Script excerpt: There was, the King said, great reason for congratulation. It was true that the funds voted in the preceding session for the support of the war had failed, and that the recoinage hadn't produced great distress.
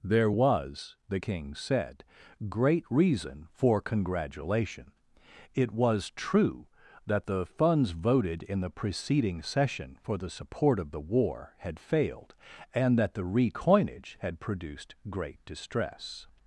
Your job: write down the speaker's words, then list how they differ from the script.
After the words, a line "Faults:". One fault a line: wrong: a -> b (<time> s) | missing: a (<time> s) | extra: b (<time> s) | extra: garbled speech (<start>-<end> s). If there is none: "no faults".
There was, the King said, great reason for congratulation. It was true that the funds voted in the preceding session for the support of the war had failed, and that the recoinage had produced great distress.
Faults:
wrong: hadn't -> had (14.2 s)